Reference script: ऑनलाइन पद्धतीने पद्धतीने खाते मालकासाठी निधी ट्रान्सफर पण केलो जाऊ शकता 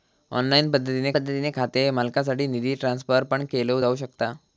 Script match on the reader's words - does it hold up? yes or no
yes